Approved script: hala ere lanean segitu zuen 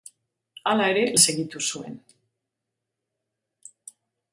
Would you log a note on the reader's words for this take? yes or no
yes